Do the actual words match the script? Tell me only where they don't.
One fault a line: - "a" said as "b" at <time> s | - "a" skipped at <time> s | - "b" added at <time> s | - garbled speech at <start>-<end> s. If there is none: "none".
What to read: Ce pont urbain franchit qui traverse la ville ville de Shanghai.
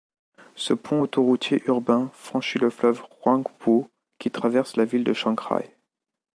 - "autoroutier" added at 1.0 s
- "le fleuve Huangpu" added at 2.6 s
- "ville" skipped at 5.0 s